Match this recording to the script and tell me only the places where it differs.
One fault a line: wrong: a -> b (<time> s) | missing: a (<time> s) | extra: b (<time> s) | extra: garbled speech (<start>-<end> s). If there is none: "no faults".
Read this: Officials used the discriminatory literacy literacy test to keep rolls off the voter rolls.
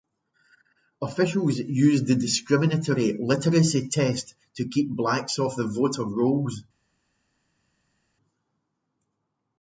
missing: literacy (3.9 s)
wrong: rolls -> blacks (4.9 s)